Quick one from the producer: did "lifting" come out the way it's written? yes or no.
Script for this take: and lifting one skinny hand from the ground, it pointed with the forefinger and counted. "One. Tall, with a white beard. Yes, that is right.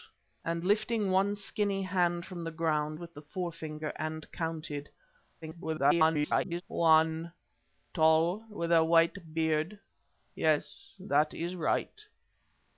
yes